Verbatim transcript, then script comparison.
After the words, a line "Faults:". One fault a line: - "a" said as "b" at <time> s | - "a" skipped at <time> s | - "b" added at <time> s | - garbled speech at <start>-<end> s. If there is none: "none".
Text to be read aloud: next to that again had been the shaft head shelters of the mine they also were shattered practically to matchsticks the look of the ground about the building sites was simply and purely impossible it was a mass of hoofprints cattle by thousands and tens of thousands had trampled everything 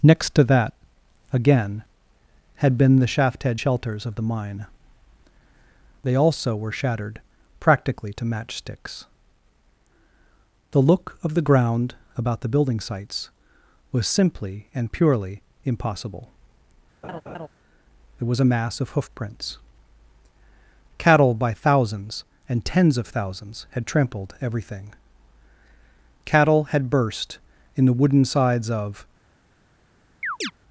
next to that again had been the shaft head shelters of the mine they also were shattered practically to matchsticks the look of the ground about the building sites was simply and purely impossible it was a mass of hoofprints cattle by thousands and tens of thousands had trampled everything cattle had burst in the wooden sides of
Faults:
- "cattle had burst in the wooden sides of" added at 26.3 s